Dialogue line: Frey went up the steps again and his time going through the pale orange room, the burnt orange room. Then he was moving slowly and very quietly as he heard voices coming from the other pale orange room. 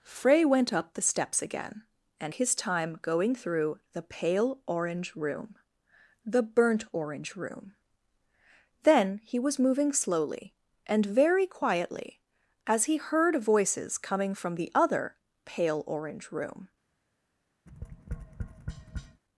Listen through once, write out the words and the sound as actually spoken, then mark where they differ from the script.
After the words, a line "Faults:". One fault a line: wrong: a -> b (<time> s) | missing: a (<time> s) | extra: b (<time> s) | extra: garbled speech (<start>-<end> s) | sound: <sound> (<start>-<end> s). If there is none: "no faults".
Frey went up the steps again and his time going through the pale orange room, the burnt orange room. Then he was moving slowly and very quietly as he heard voices coming from the other pale orange room.
Faults:
sound: tap (17.7-19.2 s)